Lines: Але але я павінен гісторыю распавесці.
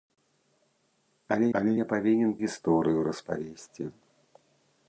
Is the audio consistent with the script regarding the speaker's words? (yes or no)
yes